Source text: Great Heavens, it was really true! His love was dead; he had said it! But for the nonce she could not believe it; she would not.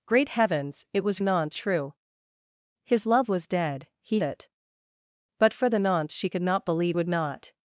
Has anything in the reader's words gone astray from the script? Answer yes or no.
yes